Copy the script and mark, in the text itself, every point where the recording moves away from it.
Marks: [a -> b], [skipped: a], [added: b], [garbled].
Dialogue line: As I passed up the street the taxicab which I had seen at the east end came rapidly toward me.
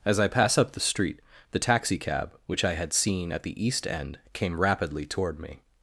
As I [passed -> pass] up the street the taxicab which I had seen at the east end came rapidly toward me.